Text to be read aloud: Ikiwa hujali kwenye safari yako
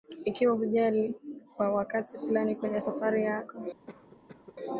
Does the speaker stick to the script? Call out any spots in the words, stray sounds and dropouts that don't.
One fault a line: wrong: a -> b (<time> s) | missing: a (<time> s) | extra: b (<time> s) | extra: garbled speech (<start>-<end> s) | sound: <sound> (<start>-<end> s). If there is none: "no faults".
extra: kwa wakati fulani (1.6 s)
sound: cough (3.9-4.6 s)